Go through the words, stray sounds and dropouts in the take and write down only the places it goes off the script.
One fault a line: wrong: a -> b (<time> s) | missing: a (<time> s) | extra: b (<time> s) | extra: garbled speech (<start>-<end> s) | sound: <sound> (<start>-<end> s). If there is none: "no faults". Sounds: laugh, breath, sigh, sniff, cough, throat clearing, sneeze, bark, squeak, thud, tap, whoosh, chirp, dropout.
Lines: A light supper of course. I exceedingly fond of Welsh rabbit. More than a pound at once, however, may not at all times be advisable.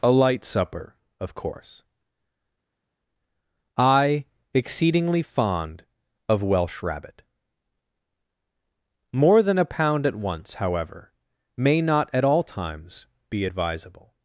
no faults